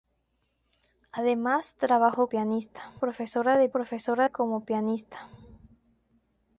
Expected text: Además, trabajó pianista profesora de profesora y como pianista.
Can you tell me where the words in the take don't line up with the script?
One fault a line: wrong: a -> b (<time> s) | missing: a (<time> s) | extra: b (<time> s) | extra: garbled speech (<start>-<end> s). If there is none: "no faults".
no faults